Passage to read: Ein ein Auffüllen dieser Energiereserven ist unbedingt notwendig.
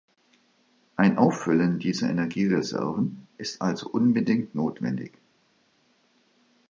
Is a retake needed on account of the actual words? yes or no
yes